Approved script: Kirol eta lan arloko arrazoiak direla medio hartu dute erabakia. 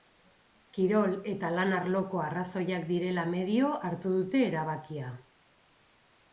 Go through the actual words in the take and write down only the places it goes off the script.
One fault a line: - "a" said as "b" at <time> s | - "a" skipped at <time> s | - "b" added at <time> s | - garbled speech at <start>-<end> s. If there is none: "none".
none